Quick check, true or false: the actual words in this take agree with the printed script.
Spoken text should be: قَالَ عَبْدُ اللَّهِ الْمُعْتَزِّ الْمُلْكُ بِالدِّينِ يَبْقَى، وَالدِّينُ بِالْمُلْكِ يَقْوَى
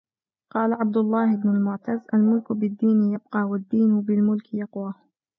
false